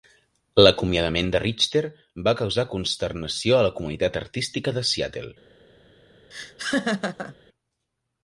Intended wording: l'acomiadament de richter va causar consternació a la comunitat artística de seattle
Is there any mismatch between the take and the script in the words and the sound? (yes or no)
yes